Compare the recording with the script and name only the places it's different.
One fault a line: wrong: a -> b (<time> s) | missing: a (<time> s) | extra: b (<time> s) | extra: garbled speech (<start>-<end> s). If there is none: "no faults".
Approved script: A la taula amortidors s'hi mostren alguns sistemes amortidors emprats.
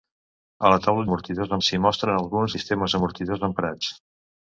no faults